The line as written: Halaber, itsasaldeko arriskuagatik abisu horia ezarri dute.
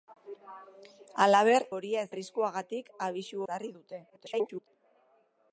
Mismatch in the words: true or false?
true